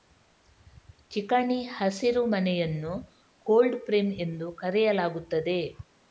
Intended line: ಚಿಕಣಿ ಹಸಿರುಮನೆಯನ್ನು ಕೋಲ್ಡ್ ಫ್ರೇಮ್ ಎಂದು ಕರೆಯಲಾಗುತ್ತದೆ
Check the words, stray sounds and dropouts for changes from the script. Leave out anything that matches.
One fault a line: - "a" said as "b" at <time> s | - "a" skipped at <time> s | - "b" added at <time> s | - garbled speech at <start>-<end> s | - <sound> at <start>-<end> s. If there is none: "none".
none